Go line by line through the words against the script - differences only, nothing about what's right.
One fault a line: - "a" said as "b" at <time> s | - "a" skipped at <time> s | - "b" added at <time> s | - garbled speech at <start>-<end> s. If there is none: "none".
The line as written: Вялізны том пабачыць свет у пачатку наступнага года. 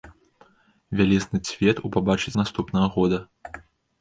- "том пабачыць" skipped at 1.4 s
- "пачатку" said as "пабачыць" at 2.0 s